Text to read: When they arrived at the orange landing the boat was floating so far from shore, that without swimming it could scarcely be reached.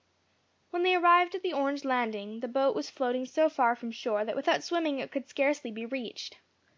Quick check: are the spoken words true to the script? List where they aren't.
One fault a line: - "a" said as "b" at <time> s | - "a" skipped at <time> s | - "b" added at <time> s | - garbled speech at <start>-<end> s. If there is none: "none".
none